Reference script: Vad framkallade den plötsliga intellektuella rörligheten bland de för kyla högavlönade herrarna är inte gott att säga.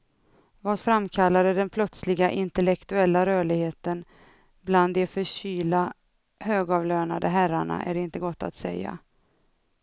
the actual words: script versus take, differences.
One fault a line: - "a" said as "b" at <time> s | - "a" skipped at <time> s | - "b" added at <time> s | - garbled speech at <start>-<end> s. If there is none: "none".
none